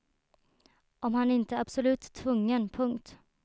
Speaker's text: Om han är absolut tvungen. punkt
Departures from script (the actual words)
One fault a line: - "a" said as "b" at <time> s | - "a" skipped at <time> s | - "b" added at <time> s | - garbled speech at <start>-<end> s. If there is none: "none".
- "inte" added at 1.3 s